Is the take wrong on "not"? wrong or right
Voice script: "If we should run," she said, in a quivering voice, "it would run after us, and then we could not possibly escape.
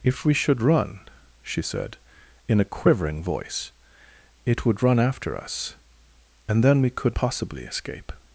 wrong